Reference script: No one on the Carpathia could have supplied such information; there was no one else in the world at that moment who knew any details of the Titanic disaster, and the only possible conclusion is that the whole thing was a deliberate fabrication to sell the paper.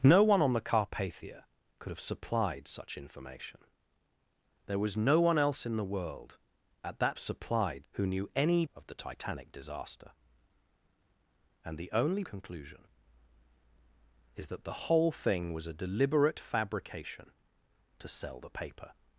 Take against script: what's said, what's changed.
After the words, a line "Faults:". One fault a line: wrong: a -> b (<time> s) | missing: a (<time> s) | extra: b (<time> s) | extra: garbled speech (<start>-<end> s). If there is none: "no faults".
No one on the Carpathia could have supplied such information; there was no one else in the world at that supplied who knew any of the Titanic disaster, and the only conclusion is that the whole thing was a deliberate fabrication to sell the paper.
Faults:
wrong: moment -> supplied (7.2 s)
missing: details (8.6 s)
missing: possible (12.2 s)